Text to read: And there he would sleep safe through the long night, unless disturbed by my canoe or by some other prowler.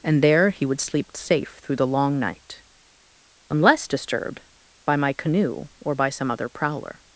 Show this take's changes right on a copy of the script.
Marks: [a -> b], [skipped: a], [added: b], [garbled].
And there he would sleep safe through the long night, unless disturbed by my canoe or by some other prowler.